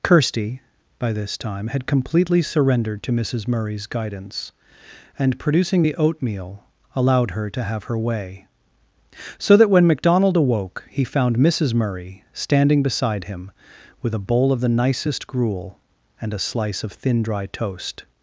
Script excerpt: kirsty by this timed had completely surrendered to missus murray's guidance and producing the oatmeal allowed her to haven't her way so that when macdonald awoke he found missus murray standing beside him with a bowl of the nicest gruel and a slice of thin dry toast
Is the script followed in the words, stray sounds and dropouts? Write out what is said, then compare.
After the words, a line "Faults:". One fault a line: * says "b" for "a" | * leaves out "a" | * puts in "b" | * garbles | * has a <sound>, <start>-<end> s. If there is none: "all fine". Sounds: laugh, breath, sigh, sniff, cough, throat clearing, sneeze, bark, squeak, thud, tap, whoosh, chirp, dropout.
kirsty by this time had completely surrendered to missus murray's guidance and producing the oatmeal allowed her to have her way so that when macdonald awoke he found missus murray standing beside him with a bowl of the nicest gruel and a slice of thin dry toast
Faults:
* says "time" for "timed"
* says "have" for "haven't"